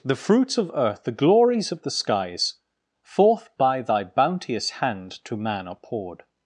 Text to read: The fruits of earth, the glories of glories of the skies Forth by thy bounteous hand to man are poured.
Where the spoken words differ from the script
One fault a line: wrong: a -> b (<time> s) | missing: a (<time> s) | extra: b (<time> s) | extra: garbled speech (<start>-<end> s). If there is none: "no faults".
missing: glories of (1.8 s)